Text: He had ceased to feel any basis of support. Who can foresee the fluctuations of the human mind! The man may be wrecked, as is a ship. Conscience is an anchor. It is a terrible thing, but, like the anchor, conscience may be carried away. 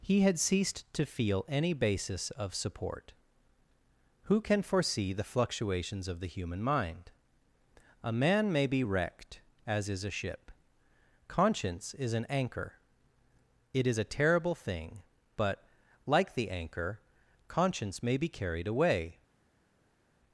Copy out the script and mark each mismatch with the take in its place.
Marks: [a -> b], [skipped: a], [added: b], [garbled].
He had ceased to feel any basis of support. Who can foresee the fluctuations of the human mind! [The -> A] man may be wrecked, as is a ship. Conscience is an anchor. It is a terrible thing, but, like the anchor, conscience may be carried away.